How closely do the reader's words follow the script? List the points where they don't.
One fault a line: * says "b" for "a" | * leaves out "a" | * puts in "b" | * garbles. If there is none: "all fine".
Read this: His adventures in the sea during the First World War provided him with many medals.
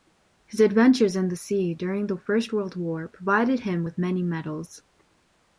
all fine